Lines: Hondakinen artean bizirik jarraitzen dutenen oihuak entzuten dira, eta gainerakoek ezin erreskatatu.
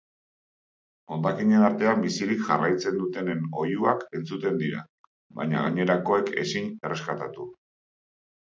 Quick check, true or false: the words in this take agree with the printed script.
false